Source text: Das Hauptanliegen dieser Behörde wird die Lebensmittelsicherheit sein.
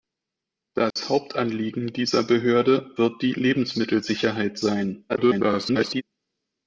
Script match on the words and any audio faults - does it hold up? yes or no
no